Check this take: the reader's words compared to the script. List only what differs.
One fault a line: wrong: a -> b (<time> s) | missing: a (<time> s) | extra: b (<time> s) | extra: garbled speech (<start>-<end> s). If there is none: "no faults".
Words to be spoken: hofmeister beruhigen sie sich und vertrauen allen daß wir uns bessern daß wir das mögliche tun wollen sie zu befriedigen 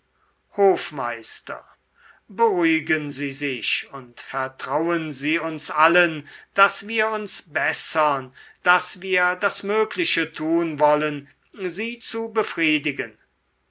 extra: sie uns (5.1 s)